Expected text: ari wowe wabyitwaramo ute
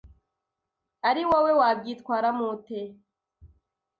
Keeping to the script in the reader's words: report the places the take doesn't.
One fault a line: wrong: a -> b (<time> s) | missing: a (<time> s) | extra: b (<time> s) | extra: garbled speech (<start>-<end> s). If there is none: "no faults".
no faults